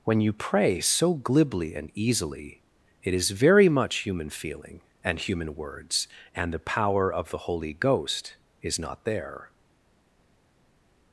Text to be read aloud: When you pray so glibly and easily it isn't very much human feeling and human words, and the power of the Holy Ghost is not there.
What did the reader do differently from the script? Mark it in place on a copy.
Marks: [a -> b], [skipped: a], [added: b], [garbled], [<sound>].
When you pray so glibly and easily it [isn't -> is] very much human feeling and human words, and the power of the Holy Ghost is not there.